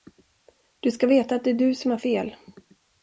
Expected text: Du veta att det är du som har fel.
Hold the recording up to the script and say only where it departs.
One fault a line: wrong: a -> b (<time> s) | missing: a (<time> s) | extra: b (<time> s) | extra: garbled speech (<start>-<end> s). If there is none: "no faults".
extra: ska (0.9 s)